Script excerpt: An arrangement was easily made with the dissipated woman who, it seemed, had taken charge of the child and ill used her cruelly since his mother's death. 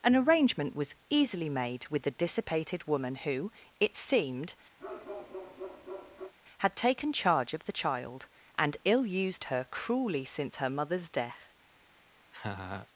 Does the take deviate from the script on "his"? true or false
true